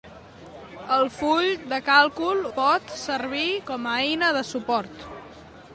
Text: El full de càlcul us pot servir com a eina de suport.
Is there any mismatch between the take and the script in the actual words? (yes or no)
yes